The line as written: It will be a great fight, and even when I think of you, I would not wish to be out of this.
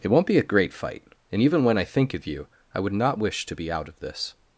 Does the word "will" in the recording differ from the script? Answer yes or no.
yes